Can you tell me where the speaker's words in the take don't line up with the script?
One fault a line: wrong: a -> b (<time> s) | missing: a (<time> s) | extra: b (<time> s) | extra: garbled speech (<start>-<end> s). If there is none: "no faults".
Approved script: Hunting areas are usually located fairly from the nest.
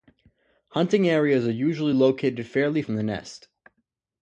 no faults